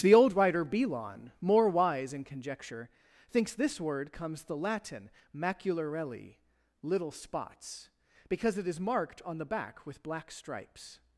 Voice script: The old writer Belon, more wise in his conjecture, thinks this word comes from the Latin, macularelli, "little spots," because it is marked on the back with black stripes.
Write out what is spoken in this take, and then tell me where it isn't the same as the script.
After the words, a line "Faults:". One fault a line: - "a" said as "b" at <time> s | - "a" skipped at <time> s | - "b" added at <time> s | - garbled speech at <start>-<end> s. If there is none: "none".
The old writer Belon, more wise in conjecture, thinks this word comes the Latin, macularelli, "little spots," because it is marked on the back with black stripes.
Faults:
- "his" skipped at 2.2 s
- "from" skipped at 4.4 s